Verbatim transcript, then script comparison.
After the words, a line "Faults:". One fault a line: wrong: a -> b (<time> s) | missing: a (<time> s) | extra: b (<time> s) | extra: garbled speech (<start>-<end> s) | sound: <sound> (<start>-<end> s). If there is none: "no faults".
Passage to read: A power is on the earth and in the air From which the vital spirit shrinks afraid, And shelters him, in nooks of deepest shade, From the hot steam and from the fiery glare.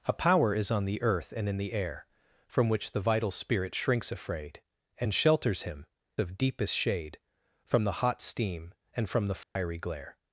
A power is on the earth and in the air From which the vital spirit shrinks afraid, And shelters him, of deepest shade, From the hot steam and from the fiery glare.
Faults:
missing: in nooks (5.8 s)
sound: dropout (9.4-9.6 s)